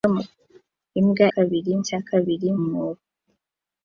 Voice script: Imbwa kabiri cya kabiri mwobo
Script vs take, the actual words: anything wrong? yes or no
no